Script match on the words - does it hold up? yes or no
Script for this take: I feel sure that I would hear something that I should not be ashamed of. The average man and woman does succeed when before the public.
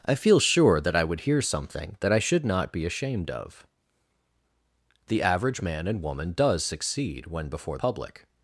no